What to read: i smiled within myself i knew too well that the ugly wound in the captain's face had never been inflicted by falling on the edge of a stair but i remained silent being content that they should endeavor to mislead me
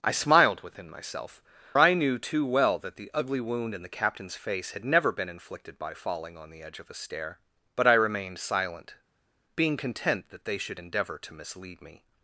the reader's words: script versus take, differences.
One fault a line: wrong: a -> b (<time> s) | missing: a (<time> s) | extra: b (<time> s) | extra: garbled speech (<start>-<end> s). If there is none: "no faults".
no faults